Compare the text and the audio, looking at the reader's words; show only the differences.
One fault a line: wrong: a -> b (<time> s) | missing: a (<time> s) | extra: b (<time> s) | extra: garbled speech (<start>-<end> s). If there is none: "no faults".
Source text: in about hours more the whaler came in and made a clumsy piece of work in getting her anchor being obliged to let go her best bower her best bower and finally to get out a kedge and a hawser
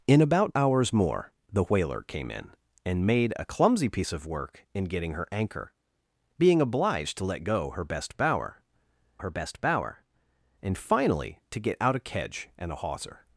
no faults